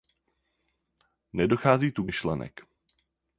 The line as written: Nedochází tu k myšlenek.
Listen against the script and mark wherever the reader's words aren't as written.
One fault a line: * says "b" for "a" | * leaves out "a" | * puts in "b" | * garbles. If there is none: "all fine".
all fine